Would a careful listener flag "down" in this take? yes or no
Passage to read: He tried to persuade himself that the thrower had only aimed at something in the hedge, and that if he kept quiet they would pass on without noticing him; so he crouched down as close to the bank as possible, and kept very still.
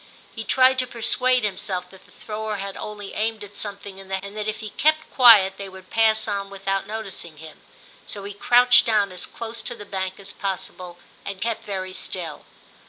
no